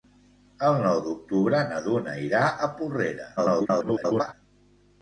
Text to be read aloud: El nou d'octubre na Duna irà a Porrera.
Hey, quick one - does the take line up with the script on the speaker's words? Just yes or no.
no